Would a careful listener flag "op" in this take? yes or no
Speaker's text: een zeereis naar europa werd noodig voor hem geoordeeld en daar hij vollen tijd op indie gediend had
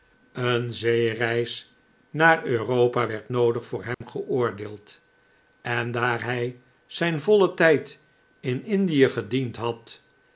yes